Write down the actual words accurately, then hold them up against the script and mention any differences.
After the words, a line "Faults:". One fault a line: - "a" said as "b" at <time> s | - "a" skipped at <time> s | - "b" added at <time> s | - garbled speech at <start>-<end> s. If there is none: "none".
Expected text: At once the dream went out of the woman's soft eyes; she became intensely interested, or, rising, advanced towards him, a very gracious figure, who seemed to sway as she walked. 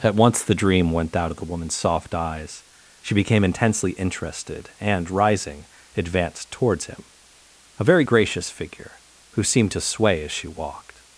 At once the dream went out of the woman's soft eyes; she became intensely interested, and, rising, advanced towards him, a very gracious figure, who seemed to sway as she walked.
Faults:
- "or" said as "and" at 4.8 s